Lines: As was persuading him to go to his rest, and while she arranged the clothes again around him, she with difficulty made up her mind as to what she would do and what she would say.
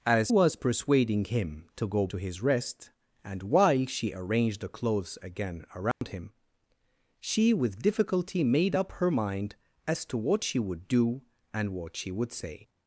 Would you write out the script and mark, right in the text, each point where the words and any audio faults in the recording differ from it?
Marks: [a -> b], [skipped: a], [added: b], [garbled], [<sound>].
As was persuading him to go to his rest, and while she arranged the clothes again around [dropout] him, she with difficulty made up her mind as to what she would do and what she would say.